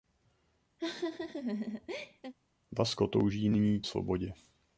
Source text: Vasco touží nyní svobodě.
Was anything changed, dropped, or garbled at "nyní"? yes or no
no